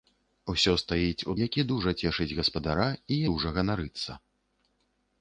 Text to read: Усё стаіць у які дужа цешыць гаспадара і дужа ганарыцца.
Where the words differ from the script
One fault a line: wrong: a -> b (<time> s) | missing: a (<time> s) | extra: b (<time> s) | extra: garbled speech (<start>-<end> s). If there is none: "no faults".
no faults